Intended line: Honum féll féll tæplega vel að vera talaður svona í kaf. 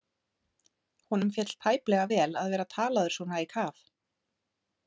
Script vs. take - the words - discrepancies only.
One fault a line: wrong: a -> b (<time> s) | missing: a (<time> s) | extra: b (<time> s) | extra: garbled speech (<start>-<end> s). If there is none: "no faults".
missing: féll (1.5 s)